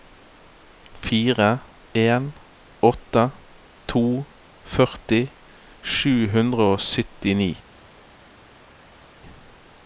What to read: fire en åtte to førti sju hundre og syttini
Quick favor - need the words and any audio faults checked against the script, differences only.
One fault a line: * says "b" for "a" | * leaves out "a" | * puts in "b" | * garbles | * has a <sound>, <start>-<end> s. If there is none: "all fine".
all fine